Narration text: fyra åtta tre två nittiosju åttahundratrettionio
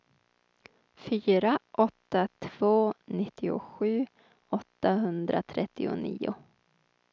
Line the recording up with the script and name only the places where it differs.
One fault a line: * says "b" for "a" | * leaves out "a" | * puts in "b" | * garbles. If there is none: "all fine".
* leaves out "tre"